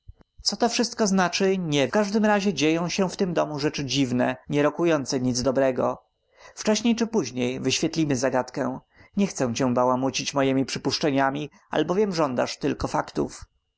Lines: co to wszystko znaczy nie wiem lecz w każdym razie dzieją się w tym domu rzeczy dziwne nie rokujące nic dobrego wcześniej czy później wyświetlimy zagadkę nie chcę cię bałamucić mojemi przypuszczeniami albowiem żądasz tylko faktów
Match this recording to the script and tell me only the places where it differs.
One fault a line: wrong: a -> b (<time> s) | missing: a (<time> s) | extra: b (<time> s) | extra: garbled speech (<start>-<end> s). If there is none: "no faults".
missing: wiem lecz (1.9 s)